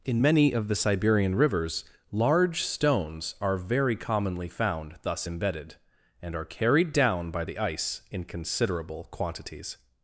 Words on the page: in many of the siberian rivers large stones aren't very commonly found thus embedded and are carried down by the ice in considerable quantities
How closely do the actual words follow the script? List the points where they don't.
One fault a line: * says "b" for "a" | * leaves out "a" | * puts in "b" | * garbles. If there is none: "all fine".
* says "are" for "aren't"